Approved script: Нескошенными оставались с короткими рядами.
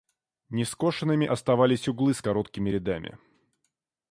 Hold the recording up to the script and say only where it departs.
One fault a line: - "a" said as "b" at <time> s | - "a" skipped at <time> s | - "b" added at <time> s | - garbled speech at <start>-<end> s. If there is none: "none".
- "углы" added at 1.9 s